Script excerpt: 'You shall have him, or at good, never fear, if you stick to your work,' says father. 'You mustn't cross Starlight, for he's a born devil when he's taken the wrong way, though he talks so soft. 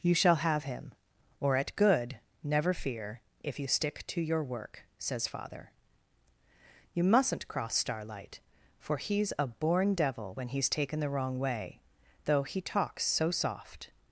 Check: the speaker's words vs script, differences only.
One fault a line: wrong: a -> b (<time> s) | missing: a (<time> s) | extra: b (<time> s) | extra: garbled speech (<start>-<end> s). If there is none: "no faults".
no faults